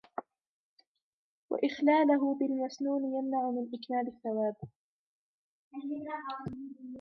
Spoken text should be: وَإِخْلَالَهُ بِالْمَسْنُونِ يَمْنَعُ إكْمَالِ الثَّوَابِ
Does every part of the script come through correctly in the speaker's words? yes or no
no